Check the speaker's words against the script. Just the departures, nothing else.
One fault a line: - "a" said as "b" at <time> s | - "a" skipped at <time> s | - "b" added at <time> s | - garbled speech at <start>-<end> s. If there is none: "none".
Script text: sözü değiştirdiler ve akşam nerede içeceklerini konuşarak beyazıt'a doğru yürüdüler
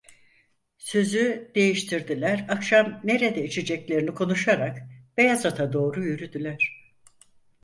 - "ve" skipped at 2.5 s